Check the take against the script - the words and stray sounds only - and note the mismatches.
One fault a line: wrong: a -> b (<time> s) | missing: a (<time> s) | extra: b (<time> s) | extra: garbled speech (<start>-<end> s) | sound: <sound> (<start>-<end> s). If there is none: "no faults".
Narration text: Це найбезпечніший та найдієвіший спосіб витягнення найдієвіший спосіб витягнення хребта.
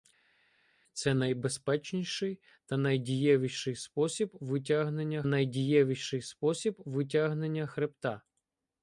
no faults